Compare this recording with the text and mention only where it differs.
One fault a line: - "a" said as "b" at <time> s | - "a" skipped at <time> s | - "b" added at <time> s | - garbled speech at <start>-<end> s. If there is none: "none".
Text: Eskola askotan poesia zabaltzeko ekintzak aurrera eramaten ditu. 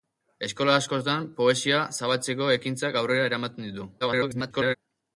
- garbled speech at 4.0-4.7 s